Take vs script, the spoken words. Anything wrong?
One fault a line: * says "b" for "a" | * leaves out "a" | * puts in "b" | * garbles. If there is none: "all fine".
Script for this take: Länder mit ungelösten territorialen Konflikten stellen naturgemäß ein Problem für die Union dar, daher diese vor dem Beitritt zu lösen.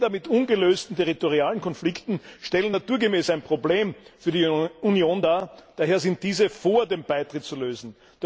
* puts in "sind"